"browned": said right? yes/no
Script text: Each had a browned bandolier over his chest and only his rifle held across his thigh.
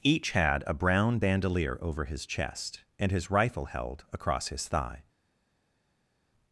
no